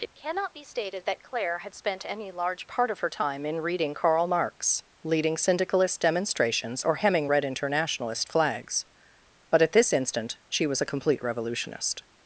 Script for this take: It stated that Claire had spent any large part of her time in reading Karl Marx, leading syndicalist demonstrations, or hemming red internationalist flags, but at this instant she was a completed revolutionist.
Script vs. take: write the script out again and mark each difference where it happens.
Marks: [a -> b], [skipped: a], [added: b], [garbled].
It [added: cannot be] stated that Claire had spent any large part of her time in reading Karl Marx, leading syndicalist demonstrations, or hemming red internationalist flags, but at this instant she was a [completed -> complete] revolutionist.